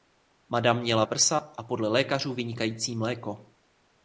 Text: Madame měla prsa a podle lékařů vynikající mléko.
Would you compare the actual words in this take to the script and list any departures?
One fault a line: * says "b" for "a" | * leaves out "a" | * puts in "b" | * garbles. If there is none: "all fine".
all fine